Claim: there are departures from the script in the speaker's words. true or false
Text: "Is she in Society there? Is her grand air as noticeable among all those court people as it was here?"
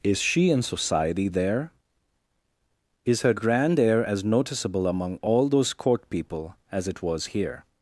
false